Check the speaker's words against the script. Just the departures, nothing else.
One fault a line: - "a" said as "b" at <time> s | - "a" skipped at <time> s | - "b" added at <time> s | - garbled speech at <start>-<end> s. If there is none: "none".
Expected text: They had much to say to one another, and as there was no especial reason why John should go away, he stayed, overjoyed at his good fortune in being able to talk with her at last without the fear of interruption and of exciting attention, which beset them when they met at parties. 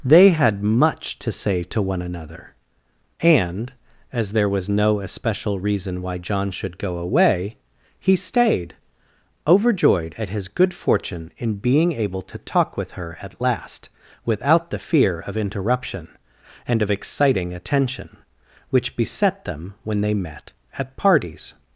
none